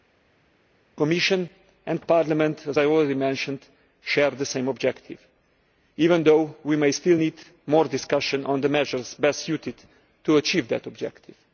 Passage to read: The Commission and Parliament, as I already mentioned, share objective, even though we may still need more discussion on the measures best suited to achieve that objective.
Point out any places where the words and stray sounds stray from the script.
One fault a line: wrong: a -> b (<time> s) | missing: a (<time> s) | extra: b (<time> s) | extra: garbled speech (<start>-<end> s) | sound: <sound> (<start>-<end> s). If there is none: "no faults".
extra: the same (4.3 s)